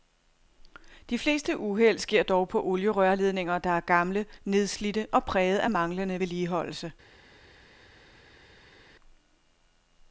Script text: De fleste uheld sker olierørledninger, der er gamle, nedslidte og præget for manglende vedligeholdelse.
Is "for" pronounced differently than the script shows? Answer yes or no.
yes